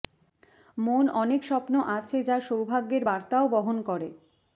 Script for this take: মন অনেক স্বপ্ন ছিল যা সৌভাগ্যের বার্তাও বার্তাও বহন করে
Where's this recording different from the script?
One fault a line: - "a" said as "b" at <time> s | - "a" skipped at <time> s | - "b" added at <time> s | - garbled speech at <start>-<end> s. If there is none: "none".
- "ছিল" said as "আছে" at 2.0 s
- "বার্তাও" skipped at 3.4 s